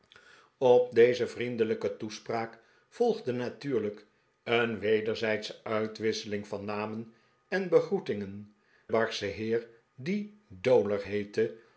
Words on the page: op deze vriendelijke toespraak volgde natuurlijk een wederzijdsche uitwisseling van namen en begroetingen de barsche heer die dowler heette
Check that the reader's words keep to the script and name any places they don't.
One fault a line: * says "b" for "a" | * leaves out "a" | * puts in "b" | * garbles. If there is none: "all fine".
* leaves out "de"